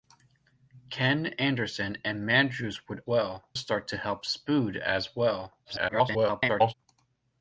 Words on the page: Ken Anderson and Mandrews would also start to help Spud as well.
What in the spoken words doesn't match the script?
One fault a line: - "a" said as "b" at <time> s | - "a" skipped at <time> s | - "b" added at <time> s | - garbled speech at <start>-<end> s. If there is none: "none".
- "also" said as "well" at 3.1 s
- garbled speech at 5.6-6.7 s